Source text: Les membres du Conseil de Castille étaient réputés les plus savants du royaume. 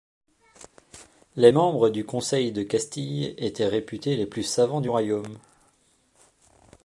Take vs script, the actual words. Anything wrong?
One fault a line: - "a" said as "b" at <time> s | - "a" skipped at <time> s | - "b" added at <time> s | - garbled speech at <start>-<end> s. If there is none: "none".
none